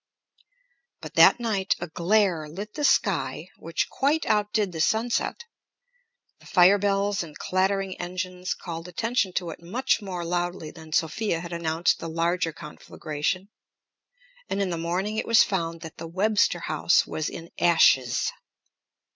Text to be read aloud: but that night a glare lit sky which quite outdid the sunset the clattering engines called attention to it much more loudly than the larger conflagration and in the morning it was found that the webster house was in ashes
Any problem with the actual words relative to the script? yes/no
yes